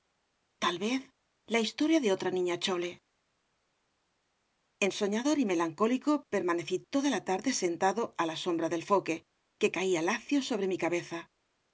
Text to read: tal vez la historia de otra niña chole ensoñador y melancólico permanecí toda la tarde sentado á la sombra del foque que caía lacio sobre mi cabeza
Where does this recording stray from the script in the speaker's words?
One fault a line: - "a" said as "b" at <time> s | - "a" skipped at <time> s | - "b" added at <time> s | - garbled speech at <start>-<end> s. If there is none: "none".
none